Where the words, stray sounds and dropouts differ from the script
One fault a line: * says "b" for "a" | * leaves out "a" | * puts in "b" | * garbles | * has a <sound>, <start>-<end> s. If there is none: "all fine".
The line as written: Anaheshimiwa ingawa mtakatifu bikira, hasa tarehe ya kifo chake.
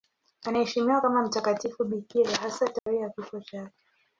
* says "kama" for "ingawa"
* has a dropout, 2.8-2.9 s